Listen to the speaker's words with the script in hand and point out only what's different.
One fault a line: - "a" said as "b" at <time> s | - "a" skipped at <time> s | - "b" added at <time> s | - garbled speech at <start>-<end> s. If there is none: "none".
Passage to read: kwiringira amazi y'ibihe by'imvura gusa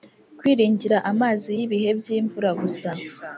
none